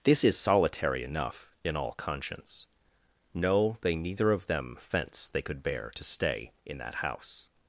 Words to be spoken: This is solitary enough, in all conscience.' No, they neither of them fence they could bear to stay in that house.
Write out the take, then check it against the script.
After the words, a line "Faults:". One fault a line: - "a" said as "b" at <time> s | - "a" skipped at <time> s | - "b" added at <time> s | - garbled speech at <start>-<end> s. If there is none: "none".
This is solitary enough, in all conscience.' No, they neither of them fence they could bear to stay in that house.
Faults:
none